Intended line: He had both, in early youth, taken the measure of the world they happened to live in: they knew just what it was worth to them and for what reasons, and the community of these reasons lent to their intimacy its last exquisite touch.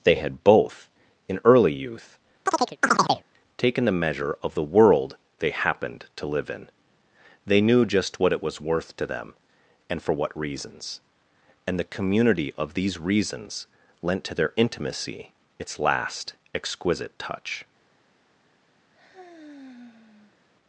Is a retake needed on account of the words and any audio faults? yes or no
yes